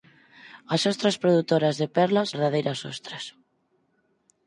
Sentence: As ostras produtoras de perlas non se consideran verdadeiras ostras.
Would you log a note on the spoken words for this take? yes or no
yes